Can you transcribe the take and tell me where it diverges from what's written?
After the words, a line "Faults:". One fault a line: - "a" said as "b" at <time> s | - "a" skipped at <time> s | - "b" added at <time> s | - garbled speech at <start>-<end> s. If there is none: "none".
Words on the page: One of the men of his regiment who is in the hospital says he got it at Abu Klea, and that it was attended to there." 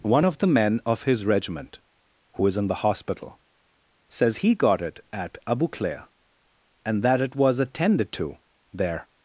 One of the men of his regiment who is in the hospital says he got it at Abu Klea, and that it was attended to there."
Faults:
none